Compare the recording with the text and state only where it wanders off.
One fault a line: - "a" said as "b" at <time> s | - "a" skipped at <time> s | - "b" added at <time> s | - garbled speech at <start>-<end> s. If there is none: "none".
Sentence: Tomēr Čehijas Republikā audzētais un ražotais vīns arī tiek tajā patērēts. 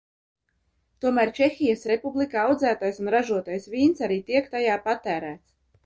none